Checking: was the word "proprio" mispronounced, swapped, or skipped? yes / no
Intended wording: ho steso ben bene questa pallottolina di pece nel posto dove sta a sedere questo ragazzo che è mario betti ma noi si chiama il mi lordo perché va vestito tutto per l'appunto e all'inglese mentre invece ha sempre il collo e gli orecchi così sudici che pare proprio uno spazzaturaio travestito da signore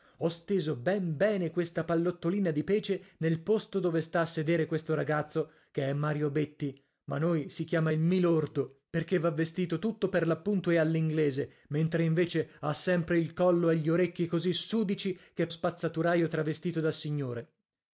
yes